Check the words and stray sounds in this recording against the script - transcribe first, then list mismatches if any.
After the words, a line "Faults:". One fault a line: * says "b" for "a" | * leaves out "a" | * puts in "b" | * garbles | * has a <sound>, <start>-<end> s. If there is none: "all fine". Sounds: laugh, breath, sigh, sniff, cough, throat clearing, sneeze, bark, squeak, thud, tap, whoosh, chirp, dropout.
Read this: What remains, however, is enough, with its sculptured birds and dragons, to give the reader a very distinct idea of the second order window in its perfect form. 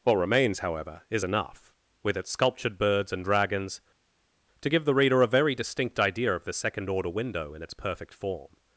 What remains, however, is enough, with its sculptured birds and dragons, to give the reader a very distinct idea of the second order window in its perfect form.
Faults:
all fine